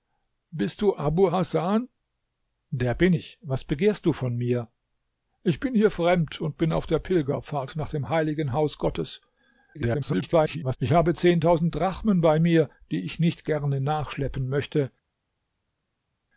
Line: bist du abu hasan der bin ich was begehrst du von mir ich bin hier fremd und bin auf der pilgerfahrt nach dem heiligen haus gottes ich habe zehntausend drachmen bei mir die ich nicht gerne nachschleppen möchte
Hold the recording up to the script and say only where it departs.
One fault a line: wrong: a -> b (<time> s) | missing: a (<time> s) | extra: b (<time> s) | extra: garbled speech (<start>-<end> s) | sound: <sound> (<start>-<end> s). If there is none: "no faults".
extra: garbled speech (9.7-10.8 s)